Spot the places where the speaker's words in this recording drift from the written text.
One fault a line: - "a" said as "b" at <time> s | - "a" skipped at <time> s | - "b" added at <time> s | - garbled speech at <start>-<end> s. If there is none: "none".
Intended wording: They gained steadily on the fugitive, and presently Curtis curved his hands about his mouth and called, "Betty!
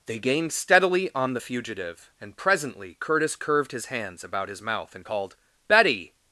none